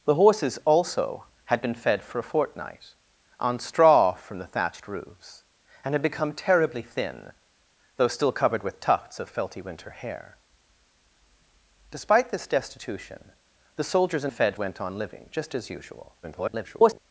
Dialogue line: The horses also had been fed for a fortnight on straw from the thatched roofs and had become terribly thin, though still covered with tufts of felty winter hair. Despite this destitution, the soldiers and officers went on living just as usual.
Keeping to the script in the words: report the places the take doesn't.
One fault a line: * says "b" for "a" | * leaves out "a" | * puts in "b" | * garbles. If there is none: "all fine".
* says "fed" for "officers"
* garbles